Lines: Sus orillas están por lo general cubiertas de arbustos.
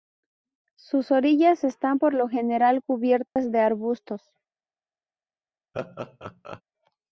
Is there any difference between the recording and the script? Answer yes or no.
no